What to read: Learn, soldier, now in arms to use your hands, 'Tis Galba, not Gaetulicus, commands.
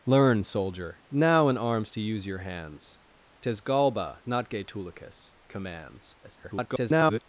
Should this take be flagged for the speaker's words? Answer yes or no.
yes